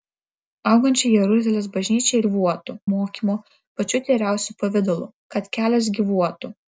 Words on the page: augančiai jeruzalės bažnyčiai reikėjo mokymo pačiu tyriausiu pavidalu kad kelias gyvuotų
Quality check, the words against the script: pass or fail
fail